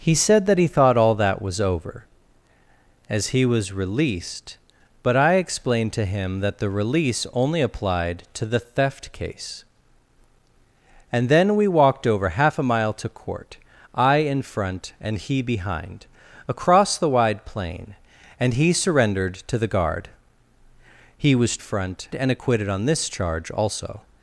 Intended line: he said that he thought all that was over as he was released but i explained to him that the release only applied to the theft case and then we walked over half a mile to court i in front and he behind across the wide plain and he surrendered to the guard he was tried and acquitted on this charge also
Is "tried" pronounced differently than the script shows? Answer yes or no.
yes